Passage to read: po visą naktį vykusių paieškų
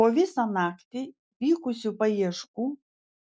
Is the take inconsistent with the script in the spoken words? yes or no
no